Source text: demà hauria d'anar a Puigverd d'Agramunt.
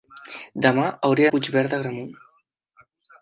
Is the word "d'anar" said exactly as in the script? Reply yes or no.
no